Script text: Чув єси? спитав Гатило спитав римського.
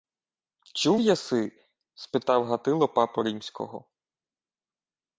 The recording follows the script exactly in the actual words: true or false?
false